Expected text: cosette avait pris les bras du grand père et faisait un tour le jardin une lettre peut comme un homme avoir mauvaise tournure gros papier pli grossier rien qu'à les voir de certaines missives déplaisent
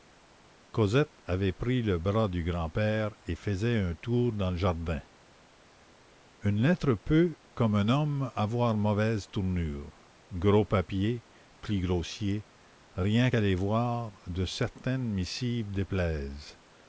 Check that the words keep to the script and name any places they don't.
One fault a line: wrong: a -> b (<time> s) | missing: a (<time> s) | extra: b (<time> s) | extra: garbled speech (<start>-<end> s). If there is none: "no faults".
wrong: les -> le (1.8 s)
extra: dans (4.3 s)